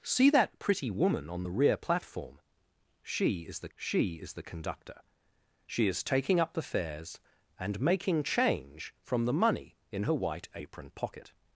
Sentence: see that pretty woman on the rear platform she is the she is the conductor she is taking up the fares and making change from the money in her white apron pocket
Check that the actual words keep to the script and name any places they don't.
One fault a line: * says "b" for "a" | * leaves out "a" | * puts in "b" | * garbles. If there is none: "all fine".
all fine